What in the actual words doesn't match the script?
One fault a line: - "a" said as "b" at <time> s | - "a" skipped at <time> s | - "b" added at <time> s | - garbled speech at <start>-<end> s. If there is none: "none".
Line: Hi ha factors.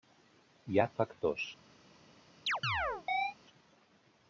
none